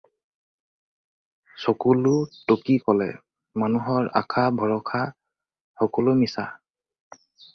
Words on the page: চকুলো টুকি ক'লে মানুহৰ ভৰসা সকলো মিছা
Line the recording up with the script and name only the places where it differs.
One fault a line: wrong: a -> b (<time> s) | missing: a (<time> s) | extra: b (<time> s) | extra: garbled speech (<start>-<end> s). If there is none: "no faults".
extra: আশা (4.2 s)